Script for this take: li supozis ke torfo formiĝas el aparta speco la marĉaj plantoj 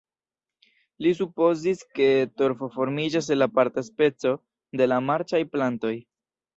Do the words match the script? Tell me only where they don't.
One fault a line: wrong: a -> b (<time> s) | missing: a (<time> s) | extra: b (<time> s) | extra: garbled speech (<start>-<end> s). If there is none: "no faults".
extra: de (4.8 s)